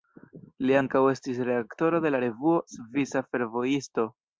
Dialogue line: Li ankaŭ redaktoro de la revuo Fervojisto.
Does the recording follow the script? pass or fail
fail